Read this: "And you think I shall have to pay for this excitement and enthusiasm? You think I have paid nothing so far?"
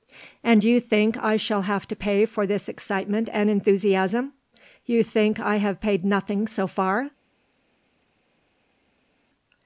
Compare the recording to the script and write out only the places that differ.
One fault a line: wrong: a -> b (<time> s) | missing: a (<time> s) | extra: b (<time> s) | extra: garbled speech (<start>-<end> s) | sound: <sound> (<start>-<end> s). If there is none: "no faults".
no faults